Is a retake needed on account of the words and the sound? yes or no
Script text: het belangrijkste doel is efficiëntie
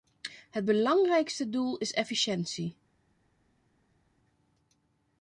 no